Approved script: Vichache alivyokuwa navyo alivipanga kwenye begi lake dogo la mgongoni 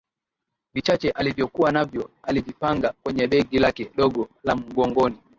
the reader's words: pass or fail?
pass